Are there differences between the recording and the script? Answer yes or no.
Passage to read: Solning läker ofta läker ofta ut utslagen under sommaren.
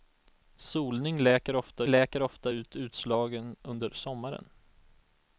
no